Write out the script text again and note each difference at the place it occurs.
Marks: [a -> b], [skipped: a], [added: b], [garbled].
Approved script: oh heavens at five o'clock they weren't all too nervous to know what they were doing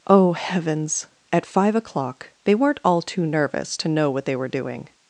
oh heavens at five o'clock they weren't all too nervous to know what they were doing